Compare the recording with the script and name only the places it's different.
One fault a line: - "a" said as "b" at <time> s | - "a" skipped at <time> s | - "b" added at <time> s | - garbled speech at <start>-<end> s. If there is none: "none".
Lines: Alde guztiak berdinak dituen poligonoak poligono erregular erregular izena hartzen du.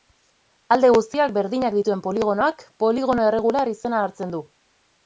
- "erregular" skipped at 3.8 s